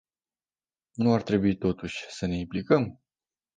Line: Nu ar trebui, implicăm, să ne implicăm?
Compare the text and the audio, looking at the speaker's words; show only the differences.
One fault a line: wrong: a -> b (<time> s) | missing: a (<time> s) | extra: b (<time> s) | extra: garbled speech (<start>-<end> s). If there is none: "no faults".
wrong: implicăm -> totuși (1.6 s)